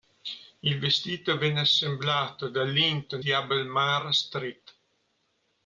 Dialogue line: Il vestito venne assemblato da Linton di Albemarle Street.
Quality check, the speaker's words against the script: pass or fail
pass